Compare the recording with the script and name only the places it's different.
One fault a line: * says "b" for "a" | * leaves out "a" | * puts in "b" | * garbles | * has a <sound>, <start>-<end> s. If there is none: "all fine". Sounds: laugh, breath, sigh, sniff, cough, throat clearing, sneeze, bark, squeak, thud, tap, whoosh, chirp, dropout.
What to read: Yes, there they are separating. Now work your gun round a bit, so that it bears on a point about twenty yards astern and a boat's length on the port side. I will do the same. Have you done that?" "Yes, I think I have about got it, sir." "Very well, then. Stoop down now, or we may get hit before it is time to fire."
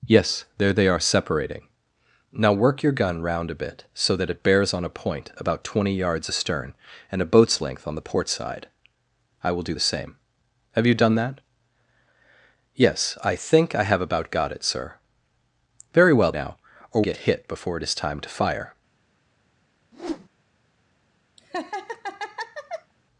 * leaves out "then Stoop down"
* leaves out "we may"
* has a whoosh, 19.9-20.3 s
* has a laugh, 21.4-22.9 s